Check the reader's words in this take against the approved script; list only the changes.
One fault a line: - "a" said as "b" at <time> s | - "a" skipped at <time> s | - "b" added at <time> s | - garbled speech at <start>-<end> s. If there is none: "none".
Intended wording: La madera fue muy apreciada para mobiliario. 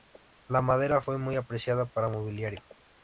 none